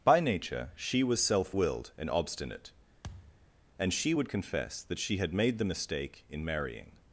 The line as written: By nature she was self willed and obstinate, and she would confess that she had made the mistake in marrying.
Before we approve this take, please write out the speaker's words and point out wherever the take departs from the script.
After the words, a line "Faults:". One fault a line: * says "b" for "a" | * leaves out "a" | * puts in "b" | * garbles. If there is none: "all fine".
By nature she was self willed and obstinate, and she would confess that she had made the mistake in marrying.
Faults:
all fine